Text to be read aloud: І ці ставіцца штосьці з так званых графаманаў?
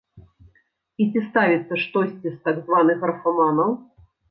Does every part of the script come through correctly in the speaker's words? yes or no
yes